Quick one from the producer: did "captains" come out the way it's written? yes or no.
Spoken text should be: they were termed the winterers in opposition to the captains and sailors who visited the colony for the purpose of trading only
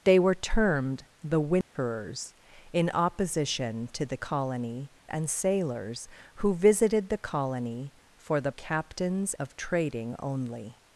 no